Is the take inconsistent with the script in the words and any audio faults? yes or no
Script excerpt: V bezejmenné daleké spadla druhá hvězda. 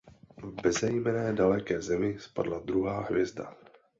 yes